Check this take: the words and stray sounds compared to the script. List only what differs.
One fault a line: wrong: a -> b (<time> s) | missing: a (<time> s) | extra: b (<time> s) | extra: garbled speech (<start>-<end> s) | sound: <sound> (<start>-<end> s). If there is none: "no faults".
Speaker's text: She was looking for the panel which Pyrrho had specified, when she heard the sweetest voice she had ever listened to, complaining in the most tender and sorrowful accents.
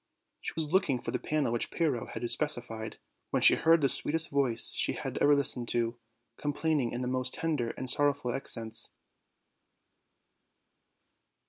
no faults